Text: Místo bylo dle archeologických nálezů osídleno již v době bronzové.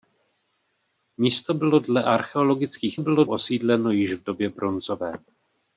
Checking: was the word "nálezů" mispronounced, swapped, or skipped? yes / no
yes